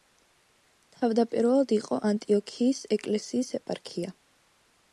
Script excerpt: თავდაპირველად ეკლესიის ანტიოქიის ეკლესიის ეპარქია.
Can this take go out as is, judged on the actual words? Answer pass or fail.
fail